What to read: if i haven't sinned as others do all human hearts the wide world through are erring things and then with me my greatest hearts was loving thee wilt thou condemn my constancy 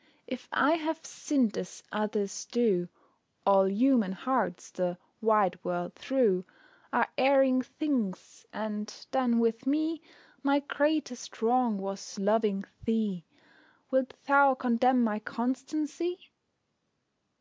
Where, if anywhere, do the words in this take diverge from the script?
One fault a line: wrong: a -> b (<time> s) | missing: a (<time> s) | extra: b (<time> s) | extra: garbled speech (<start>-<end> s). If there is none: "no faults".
wrong: haven't -> have (0.8 s)
wrong: hearts -> wrong (11.4 s)